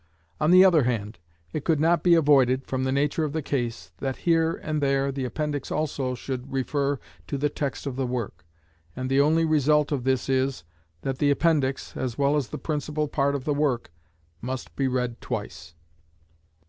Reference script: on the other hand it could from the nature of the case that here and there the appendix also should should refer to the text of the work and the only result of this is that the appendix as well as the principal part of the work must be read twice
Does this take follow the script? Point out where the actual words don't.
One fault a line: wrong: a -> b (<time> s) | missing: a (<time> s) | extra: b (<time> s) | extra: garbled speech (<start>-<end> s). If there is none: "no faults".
extra: not be avoided (1.8 s)
missing: should (6.5 s)